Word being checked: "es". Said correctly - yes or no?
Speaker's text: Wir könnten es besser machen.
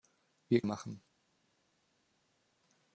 no